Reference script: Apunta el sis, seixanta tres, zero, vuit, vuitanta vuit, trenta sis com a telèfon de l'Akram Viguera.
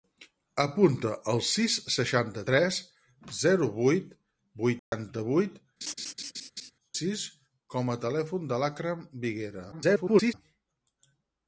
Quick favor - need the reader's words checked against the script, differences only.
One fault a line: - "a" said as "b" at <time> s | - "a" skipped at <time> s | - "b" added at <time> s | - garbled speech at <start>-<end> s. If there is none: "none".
- "trenta" skipped at 5.6 s
- garbled speech at 9.7-10.3 s